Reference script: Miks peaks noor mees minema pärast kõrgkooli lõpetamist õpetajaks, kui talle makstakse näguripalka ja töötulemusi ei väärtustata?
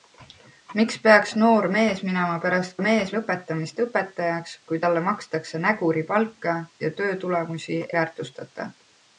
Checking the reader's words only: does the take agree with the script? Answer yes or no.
no